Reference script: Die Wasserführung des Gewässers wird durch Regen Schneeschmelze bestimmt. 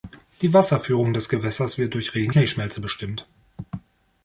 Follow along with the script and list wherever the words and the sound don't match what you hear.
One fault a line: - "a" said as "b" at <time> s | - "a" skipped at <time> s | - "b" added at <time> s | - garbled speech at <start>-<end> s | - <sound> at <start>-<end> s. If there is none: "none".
none